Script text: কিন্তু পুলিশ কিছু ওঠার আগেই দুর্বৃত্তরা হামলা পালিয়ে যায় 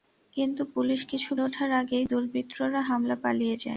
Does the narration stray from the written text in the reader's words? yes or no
no